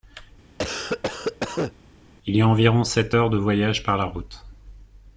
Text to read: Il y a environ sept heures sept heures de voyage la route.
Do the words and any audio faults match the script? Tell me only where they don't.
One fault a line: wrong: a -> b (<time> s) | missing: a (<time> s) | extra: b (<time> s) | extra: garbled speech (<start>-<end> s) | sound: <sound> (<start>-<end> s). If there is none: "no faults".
sound: cough (0.6-1.7 s)
missing: sept heures (3.3 s)
extra: par (3.8 s)